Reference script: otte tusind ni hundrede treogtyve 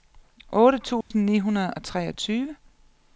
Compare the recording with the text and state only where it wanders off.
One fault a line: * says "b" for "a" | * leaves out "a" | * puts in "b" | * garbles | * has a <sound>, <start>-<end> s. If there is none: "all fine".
* has a dropout, 1.0-1.1 s
* puts in "og"